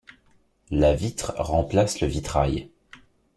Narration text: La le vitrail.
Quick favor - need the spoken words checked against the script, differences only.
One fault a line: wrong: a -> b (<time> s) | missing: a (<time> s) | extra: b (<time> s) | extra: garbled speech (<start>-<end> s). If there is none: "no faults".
extra: vitre remplace (0.9 s)